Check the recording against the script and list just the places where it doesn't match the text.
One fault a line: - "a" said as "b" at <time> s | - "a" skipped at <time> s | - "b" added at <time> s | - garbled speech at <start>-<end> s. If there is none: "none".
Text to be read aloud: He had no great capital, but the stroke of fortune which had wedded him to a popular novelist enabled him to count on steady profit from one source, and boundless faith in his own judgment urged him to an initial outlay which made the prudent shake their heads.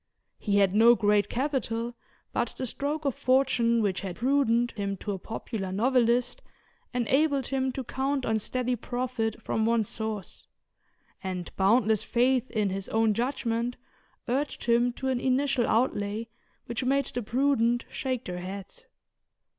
- "wedded" said as "prudent" at 4.1 s